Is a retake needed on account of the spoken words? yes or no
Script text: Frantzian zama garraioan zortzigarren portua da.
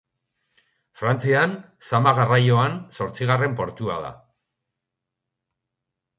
no